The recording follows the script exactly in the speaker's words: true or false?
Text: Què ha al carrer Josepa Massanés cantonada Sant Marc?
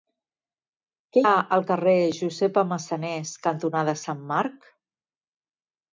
true